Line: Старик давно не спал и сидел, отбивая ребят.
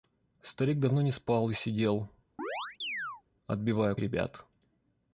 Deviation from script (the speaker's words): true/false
false